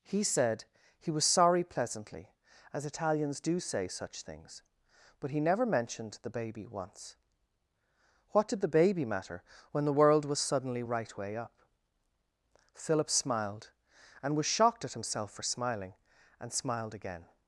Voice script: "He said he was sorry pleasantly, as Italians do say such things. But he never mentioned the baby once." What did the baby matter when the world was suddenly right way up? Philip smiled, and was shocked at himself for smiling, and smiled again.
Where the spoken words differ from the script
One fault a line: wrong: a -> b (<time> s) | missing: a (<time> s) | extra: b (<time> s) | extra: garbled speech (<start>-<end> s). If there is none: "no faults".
no faults